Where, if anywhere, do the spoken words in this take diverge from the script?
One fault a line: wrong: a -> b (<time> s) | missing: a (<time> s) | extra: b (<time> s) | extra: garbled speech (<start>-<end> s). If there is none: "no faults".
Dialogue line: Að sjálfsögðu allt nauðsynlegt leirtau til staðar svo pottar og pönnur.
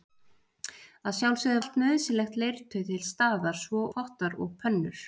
no faults